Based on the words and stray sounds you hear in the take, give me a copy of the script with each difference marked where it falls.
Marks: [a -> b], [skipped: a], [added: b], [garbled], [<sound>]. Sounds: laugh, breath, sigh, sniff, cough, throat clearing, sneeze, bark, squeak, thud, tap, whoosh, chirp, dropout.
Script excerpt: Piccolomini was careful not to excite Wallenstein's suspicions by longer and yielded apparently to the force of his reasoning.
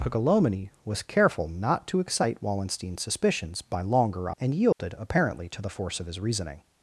Piccolomini was careful not to excite Wallenstein's suspicions by longer and yielded [dropout] apparently to the force of his reasoning.